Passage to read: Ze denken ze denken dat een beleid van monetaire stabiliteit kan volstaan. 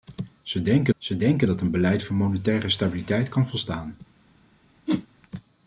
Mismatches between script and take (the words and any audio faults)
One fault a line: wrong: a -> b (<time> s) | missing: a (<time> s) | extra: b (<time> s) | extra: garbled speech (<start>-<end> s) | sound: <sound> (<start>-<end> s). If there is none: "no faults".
sound: whoosh (4.9-5.1 s)